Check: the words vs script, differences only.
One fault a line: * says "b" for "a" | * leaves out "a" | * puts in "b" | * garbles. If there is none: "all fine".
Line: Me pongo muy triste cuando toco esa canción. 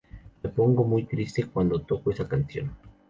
all fine